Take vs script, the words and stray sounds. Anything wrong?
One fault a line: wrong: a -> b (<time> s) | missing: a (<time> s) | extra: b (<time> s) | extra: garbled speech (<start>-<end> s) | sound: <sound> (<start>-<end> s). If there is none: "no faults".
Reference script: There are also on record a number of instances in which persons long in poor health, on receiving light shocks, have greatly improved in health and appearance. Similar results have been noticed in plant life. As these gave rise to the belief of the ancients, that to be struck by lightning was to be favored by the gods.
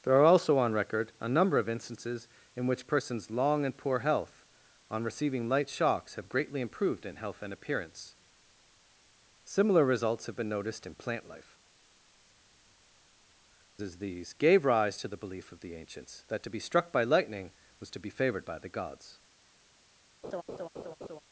sound: laugh (20.2-21.2 s)